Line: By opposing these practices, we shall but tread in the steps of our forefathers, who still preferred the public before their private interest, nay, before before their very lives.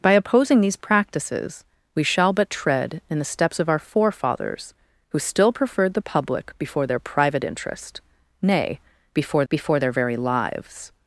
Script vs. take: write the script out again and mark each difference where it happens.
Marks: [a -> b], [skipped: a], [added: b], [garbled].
By opposing these practices, we shall but tread in the steps of our forefathers, who still preferred the public before their private interest, nay, before before their very lives.